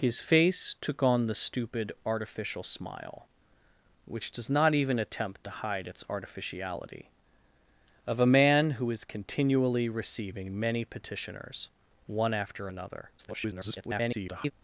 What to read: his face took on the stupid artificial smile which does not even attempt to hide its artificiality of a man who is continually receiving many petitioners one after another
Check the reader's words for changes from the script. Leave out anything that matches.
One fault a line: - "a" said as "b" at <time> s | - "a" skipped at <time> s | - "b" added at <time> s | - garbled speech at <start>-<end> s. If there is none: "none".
- garbled speech at 13.2-14.5 s